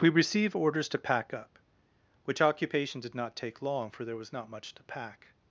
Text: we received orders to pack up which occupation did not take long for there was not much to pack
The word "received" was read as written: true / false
false